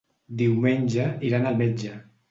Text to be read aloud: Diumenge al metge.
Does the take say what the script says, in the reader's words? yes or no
no